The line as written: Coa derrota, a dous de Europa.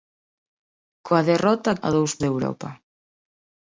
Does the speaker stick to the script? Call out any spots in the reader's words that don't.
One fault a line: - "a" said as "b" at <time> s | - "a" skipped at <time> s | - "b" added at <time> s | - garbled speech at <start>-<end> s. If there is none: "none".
none